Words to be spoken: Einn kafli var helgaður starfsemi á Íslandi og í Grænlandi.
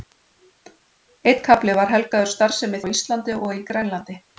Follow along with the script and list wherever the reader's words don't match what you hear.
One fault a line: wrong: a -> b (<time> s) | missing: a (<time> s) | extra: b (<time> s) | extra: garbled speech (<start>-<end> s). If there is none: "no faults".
no faults